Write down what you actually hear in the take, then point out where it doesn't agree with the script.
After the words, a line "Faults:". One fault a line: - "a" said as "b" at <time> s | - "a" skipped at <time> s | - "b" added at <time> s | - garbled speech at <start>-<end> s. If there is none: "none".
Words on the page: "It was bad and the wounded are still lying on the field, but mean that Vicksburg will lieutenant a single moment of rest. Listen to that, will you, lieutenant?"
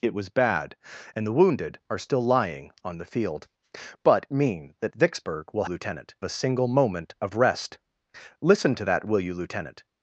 "It was bad and the wounded are still lying on the field, but mean that Vicksburg will lieutenant a single moment of rest. Listen to that, will you, lieutenant?"
Faults:
none